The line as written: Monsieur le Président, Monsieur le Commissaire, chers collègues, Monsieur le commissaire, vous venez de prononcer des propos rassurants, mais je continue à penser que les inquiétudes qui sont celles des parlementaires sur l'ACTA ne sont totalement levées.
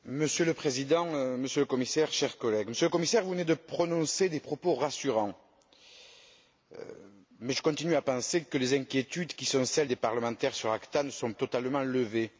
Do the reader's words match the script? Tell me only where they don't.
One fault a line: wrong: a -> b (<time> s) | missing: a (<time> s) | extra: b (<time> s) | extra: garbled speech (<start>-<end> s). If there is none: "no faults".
no faults